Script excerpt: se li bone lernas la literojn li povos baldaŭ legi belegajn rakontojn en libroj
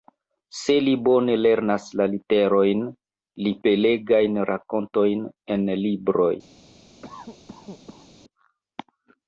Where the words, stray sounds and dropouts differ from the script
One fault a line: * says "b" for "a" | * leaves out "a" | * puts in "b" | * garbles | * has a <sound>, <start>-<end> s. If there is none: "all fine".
* leaves out "povos baldaŭ legi"
* has a cough, 7.0-8.1 s